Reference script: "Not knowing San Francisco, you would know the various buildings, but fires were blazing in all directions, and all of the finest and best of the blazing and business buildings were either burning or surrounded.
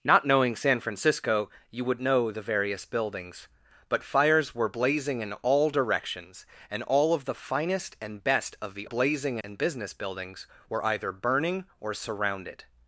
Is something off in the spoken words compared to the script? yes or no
no